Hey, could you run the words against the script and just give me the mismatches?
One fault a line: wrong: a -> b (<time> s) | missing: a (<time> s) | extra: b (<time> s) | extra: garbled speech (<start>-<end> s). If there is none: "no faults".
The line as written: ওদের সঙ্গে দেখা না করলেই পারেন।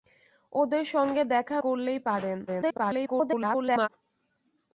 missing: না (1.6 s)
extra: garbled speech (2.5-3.9 s)